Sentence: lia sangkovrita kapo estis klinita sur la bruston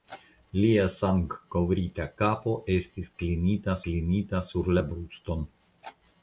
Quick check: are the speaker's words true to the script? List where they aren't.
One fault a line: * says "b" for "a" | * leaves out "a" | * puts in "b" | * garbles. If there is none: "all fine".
* puts in "klinita"